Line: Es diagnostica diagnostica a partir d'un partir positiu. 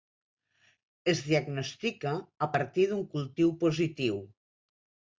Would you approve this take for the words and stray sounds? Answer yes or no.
no